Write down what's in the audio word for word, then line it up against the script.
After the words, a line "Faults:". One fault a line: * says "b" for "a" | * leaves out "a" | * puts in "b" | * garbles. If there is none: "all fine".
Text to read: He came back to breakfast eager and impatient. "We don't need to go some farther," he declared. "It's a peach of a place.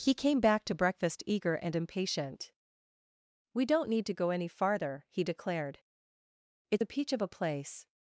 He came back to breakfast eager and impatient. "We don't need to go any farther," he declared. "It's a peach of a place.
Faults:
* says "any" for "some"